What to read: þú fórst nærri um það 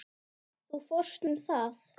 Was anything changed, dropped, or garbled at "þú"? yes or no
no